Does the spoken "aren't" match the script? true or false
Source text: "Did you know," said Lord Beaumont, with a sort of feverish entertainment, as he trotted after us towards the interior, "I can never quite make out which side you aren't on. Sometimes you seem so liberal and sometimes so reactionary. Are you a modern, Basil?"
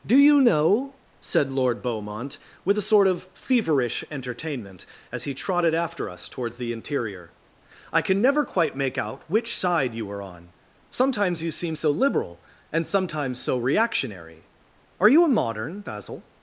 false